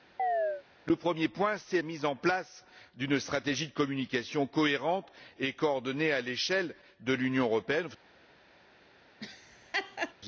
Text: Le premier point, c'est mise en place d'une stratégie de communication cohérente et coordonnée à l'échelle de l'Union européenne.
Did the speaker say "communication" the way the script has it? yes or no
yes